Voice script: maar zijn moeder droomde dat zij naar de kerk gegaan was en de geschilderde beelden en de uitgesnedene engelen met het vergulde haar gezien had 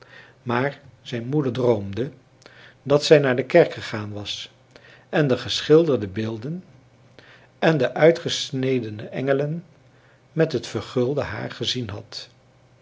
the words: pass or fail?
pass